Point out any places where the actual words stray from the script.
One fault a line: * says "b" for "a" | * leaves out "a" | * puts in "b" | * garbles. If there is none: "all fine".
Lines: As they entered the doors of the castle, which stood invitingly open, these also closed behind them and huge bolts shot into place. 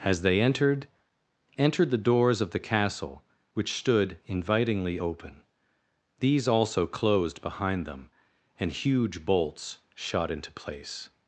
* puts in "entered"